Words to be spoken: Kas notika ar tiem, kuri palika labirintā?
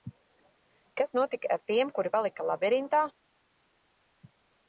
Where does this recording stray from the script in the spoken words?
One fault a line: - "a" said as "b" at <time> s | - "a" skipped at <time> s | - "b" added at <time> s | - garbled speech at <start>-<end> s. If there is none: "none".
none